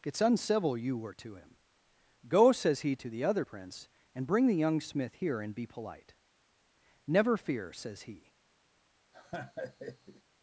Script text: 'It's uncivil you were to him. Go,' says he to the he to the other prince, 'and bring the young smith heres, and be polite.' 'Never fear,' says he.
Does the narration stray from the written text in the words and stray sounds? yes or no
yes